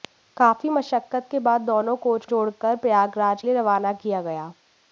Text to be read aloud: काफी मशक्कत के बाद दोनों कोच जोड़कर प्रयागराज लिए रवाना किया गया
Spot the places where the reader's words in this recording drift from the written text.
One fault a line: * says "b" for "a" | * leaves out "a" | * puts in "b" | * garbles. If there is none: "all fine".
all fine